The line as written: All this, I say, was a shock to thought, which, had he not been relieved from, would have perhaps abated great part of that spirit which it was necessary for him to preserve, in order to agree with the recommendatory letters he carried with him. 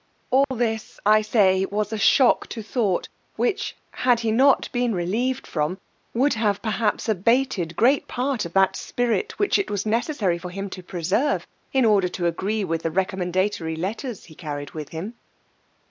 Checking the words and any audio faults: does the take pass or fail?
fail